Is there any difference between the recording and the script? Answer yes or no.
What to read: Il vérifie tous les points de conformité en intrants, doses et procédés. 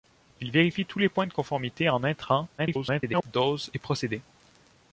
yes